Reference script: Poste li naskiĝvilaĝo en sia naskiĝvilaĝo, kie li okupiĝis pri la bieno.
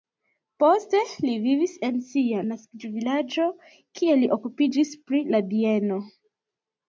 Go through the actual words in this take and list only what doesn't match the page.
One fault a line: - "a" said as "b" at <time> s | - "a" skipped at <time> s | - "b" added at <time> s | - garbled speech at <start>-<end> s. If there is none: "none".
- "naskiĝvilaĝo" said as "vivis" at 1.4 s